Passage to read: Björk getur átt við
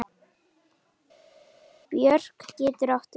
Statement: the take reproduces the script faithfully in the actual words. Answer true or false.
true